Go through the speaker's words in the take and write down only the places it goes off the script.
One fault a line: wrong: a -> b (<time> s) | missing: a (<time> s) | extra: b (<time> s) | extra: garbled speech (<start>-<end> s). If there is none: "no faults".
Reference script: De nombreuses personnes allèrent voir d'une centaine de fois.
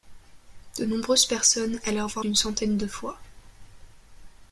no faults